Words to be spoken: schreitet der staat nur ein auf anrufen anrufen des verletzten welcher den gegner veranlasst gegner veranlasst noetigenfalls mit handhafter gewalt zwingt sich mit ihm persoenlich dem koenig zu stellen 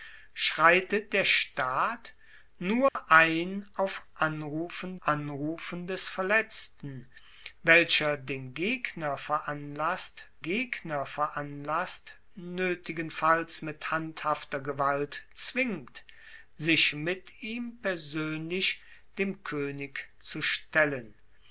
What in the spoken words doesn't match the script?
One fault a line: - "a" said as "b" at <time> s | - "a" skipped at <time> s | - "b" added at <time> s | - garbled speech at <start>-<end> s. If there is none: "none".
none